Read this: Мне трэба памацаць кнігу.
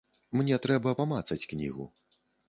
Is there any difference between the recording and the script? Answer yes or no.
no